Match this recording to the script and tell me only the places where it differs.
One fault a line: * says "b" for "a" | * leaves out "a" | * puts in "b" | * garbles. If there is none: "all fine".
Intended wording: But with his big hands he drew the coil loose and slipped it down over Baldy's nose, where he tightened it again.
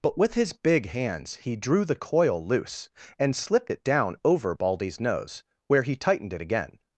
all fine